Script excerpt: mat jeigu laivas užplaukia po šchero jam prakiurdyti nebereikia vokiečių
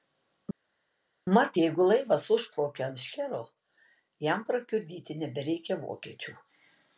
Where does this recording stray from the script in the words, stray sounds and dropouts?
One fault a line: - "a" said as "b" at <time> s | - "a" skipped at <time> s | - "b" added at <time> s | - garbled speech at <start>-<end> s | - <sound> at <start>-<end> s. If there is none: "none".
- "po" said as "ant" at 2.9 s